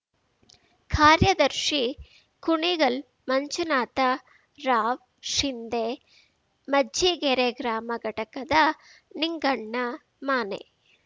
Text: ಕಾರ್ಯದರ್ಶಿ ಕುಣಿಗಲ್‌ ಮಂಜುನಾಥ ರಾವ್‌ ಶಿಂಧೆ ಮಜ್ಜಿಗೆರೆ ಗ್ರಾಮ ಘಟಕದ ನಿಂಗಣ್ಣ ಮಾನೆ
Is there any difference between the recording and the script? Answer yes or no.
no